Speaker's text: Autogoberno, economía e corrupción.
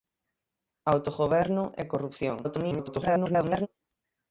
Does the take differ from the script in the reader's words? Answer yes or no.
yes